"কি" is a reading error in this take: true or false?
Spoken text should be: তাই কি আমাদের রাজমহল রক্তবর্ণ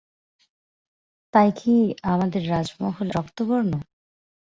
false